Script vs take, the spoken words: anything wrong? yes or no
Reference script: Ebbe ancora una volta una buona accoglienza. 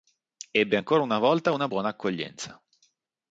no